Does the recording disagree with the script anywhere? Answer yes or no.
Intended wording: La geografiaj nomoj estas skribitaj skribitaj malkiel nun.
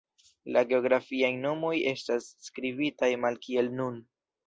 yes